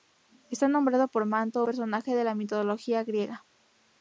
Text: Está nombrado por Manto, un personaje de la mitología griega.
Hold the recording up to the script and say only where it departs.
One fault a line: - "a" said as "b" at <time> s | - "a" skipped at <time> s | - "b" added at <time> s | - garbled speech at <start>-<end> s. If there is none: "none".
- "un" skipped at 1.6 s